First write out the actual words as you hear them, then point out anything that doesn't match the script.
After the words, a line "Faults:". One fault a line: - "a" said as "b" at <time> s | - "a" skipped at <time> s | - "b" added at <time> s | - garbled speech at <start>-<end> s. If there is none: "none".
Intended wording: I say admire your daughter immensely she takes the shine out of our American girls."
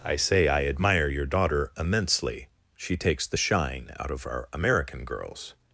I say I admire your daughter immensely she takes the shine out of our American girls."
Faults:
- "I" added at 0.5 s